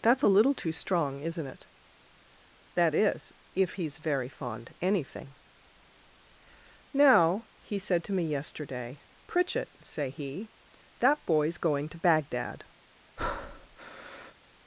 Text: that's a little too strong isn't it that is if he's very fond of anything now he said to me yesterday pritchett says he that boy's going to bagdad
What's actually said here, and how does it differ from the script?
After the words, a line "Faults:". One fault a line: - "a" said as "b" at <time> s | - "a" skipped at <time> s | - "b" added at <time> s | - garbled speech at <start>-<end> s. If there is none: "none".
that's a little too strong isn't it that is if he's very fond anything now he said to me yesterday pritchett say he that boy's going to bagdad
Faults:
- "of" skipped at 4.7 s
- "says" said as "say" at 9.8 s